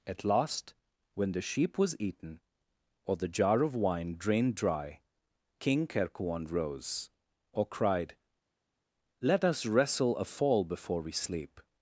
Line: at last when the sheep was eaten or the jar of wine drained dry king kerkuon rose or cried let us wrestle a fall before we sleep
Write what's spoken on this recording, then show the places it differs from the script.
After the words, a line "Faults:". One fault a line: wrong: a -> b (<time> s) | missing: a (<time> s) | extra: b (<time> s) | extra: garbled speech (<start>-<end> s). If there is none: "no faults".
at last when the sheep was eaten or the jar of wine drained dry king kerkuon rose or cried let us wrestle a fall before we sleep
Faults:
no faults